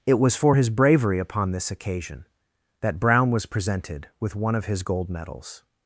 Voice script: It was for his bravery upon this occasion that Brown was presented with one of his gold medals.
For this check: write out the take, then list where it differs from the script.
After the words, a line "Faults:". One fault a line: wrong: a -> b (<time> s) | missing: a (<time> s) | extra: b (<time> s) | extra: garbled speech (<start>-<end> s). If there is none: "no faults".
It was for his bravery upon this occasion that Brown was presented with one of his gold medals.
Faults:
no faults